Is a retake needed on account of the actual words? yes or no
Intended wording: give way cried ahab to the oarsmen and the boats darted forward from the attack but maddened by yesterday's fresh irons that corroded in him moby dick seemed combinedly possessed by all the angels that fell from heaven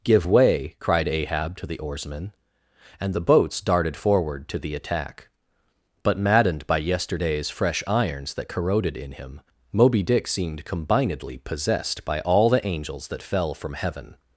yes